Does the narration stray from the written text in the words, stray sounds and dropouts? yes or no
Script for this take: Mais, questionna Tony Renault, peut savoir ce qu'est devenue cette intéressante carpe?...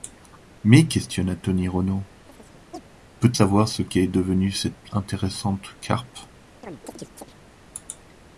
yes